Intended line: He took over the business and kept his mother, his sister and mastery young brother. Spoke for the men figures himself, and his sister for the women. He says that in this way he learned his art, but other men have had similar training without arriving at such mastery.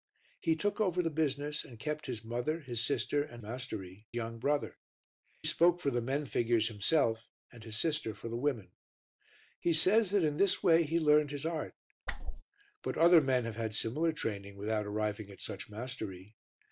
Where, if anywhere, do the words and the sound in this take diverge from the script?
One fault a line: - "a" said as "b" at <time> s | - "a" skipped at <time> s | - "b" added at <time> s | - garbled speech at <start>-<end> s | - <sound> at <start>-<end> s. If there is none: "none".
- whoosh at 12.1-12.4 s